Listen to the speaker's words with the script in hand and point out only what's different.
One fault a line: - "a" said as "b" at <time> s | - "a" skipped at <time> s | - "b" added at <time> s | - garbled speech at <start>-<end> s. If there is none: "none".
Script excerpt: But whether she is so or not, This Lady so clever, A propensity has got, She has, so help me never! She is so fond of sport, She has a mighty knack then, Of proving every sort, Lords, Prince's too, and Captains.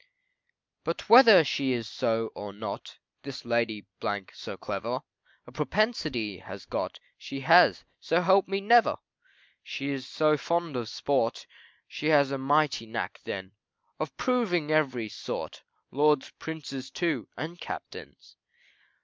none